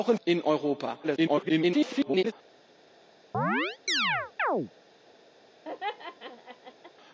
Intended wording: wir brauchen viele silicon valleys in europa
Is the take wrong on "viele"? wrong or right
wrong